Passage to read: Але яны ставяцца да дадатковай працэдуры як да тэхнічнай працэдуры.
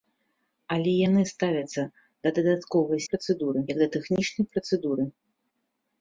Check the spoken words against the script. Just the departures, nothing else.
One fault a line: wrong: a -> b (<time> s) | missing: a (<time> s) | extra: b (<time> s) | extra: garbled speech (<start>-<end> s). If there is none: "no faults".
no faults